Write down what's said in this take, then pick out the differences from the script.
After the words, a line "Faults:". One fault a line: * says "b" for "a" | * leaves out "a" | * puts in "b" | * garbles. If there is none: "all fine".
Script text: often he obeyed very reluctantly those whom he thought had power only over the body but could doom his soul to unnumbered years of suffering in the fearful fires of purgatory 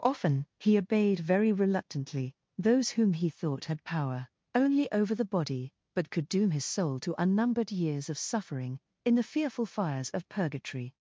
often he obeyed very reluctantly those whom he thought had power only over the body but could doom his soul to unnumbered years of suffering in the fearful fires of purgatory
Faults:
all fine